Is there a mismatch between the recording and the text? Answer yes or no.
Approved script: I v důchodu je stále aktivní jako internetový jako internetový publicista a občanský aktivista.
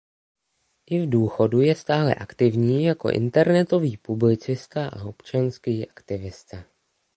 yes